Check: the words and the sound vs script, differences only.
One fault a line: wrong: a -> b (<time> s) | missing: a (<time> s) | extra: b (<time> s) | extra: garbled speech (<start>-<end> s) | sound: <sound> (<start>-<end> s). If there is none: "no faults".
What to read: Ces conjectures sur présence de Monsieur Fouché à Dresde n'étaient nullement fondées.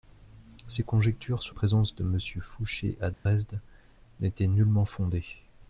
sound: dropout (3.1-3.3 s)